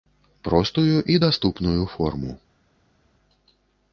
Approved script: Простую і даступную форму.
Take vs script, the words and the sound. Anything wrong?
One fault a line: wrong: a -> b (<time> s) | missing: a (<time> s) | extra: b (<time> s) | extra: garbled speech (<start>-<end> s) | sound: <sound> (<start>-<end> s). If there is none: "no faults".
no faults